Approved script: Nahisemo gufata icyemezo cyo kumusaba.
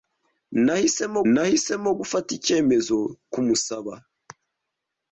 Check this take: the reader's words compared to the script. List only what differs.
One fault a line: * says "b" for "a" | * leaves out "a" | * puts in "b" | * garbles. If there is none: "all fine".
* puts in "nahisemo"
* leaves out "cyo"